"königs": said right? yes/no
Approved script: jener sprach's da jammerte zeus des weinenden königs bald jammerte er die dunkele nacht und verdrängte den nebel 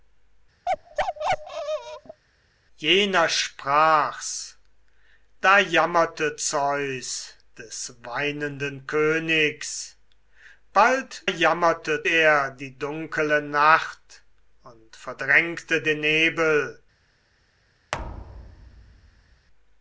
yes